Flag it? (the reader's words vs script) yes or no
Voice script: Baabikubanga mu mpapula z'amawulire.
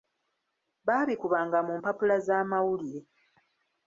no